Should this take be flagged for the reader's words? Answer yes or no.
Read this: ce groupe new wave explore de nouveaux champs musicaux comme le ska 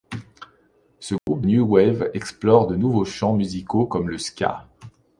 no